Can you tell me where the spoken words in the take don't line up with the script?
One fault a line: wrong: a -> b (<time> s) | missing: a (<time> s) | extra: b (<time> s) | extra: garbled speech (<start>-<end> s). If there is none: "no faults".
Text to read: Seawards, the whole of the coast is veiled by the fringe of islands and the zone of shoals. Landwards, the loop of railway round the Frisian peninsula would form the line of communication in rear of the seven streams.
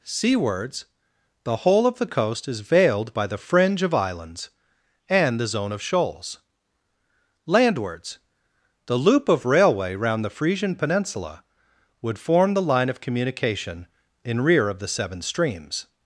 no faults